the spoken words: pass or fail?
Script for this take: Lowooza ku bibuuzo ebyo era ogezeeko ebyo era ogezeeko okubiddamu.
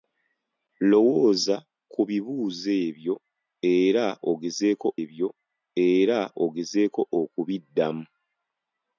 pass